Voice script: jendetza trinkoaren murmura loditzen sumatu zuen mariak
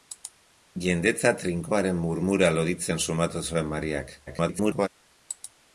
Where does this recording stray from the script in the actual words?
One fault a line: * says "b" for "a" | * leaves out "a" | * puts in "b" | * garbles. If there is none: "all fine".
* garbles